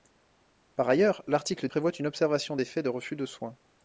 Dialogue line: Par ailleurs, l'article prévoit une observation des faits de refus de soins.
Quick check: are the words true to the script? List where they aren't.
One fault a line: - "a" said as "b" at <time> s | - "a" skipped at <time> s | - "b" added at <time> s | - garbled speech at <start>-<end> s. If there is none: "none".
none